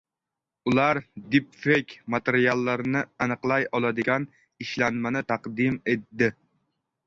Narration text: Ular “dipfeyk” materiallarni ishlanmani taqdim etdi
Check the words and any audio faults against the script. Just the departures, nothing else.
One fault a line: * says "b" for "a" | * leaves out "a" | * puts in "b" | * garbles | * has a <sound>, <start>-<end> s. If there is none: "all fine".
* puts in "aniqlay oladigan"